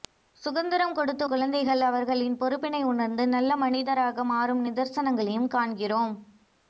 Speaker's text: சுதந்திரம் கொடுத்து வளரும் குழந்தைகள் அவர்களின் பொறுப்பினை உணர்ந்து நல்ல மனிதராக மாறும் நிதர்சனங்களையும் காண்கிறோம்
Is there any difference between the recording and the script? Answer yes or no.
yes